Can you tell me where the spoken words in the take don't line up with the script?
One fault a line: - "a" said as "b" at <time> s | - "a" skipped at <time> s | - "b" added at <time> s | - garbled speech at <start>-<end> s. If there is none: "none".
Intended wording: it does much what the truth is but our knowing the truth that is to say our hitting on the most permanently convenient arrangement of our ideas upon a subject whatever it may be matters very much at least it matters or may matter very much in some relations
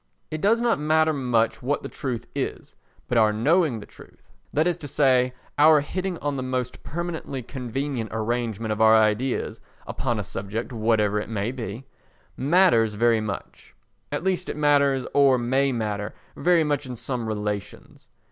- "not matter" added at 0.6 s